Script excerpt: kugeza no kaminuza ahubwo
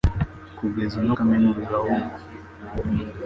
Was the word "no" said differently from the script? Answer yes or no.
no